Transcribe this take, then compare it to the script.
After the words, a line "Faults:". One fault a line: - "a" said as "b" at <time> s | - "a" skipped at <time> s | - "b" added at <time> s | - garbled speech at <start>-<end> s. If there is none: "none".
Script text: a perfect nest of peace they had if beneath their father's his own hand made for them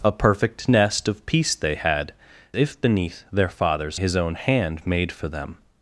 a perfect nest of peace they had if beneath their father's his own hand made for them
Faults:
none